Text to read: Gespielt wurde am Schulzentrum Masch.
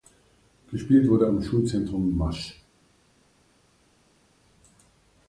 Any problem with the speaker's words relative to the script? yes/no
no